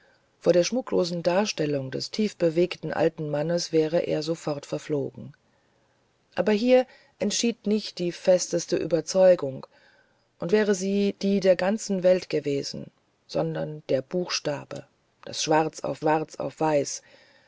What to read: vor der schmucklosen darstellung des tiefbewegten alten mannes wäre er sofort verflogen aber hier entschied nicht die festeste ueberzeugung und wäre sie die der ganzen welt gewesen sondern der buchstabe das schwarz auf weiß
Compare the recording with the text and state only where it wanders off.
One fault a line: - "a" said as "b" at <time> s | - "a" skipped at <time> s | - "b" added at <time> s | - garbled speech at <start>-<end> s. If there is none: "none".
- "schwarz auf" added at 16.0 s